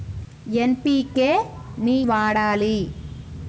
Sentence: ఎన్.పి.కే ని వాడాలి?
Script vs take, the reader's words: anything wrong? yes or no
no